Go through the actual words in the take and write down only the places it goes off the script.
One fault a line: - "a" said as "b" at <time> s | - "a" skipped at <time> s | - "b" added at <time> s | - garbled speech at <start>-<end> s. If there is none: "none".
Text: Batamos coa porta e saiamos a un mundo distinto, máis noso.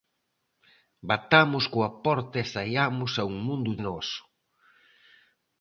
- "distinto máis" skipped at 3.7 s